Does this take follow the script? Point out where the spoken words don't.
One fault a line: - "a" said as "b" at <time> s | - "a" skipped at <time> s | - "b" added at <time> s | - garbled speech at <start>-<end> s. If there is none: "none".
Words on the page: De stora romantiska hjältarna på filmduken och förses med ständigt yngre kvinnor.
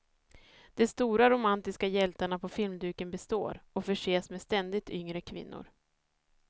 - "består" added at 3.1 s